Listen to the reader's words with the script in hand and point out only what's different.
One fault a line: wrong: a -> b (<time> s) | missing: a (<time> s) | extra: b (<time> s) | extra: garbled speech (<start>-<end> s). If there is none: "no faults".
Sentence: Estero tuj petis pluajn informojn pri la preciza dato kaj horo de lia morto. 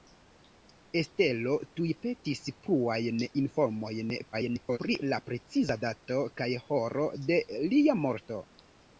extra: garbled speech (4.3-4.8 s)